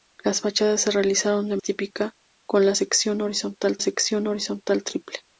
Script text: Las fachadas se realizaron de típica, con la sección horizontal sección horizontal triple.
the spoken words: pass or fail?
pass